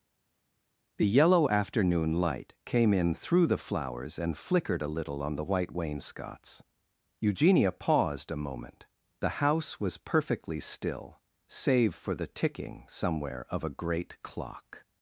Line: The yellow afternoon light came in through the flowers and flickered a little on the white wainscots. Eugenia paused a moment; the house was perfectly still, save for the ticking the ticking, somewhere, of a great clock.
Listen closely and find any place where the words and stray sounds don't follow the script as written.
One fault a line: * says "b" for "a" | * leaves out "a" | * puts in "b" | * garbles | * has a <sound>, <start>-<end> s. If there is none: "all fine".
* leaves out "the ticking"